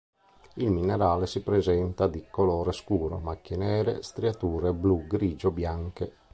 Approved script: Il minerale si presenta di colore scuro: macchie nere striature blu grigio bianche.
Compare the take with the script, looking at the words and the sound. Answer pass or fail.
pass